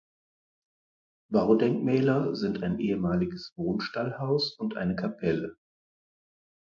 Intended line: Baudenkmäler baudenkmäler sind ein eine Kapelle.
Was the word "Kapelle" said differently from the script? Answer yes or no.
no